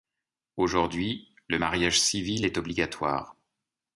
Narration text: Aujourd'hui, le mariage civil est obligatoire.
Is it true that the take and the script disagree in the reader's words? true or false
false